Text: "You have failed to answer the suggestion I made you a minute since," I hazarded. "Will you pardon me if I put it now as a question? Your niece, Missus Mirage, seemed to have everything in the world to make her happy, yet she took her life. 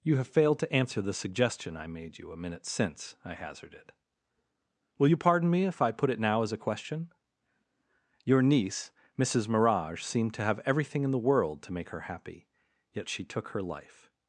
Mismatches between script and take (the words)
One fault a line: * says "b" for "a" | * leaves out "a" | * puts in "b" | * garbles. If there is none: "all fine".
all fine